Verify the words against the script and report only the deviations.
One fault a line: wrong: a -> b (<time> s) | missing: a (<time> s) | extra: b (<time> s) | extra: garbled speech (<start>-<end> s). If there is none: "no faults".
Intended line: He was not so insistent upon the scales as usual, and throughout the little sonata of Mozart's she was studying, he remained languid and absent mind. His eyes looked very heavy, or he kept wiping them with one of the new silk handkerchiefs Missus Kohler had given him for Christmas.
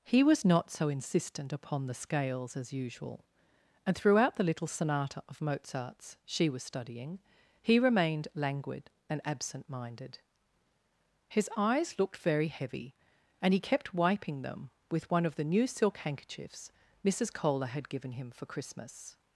wrong: mind -> minded (9.7 s)
wrong: or -> and (13.4 s)